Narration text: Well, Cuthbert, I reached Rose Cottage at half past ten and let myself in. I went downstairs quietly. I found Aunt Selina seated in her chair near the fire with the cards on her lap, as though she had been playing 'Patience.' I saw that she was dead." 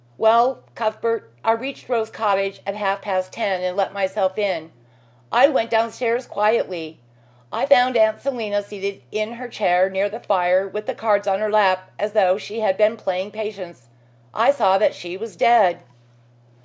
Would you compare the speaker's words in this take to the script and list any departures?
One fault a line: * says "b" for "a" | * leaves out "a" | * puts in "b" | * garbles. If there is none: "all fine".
all fine